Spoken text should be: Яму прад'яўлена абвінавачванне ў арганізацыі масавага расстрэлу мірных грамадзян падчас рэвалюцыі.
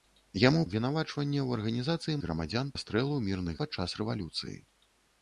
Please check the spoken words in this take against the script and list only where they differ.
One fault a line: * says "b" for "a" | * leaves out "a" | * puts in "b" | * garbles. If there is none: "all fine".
* leaves out "прад'яўлена"
* says "грамадзян" for "масавага"
* leaves out "грамадзян"